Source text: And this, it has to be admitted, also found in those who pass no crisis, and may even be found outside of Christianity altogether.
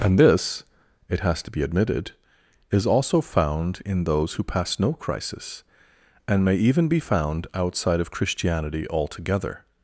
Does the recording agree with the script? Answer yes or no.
no